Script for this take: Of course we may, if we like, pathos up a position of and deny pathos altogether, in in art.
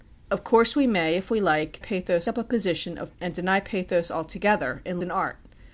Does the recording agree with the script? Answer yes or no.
yes